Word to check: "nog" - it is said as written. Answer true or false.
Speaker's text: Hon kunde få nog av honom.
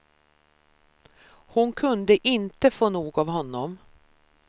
true